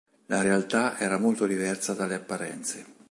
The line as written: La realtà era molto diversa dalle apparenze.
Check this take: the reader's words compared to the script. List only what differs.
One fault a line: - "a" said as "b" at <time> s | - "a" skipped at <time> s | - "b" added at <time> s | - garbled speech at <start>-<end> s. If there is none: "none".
none